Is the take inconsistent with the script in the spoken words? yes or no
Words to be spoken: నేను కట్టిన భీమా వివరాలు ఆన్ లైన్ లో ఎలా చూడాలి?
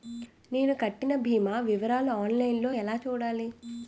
no